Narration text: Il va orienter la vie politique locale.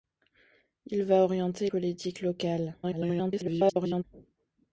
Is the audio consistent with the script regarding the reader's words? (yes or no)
no